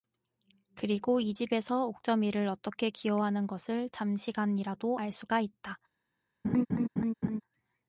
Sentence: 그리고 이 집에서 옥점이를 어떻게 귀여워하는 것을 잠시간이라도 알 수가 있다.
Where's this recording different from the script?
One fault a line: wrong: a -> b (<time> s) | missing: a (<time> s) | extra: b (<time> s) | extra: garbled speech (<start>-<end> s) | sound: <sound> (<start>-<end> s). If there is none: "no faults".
sound: laugh (6.4-7.4 s)